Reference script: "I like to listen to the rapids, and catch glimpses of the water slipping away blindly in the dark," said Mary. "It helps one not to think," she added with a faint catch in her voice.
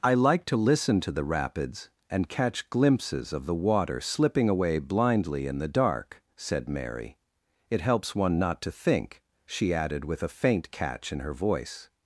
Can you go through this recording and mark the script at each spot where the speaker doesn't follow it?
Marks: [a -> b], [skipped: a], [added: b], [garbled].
"I like to listen to the rapids, and catch glimpses of the water slipping away blindly in the dark," said Mary. "It helps one not to think," she added with a faint catch in her voice.